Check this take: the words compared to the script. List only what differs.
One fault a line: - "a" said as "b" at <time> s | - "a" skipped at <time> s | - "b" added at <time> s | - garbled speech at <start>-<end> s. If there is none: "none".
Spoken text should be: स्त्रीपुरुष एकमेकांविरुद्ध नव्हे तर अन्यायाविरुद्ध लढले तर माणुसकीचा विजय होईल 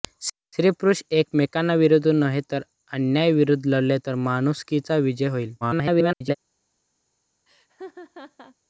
- garbled speech at 5.6-6.4 s